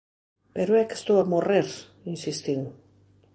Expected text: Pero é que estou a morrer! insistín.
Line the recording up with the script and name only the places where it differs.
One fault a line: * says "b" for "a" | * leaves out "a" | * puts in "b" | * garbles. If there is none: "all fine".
all fine